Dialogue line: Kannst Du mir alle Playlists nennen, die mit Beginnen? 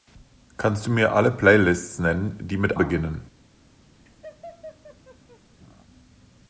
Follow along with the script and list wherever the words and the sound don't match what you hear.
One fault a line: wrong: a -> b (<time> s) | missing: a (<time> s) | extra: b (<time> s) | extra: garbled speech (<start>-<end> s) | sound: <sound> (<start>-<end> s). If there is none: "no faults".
sound: laugh (4.1-5.4 s)